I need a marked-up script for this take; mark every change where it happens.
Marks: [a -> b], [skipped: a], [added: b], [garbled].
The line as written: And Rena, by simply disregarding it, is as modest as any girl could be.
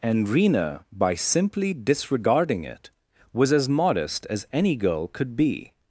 And Rena, by simply disregarding it, [is -> was] as modest as any girl could be.